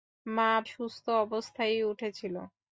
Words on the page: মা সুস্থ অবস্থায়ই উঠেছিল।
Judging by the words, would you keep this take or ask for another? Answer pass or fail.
pass